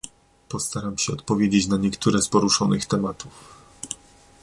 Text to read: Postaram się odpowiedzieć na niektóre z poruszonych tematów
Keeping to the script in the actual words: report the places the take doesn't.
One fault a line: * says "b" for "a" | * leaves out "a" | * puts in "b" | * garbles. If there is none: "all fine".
all fine